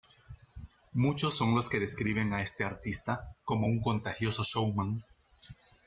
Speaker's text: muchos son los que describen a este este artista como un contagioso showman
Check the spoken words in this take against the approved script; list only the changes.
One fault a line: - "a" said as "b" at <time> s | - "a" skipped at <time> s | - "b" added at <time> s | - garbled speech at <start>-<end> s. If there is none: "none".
- "este" skipped at 2.6 s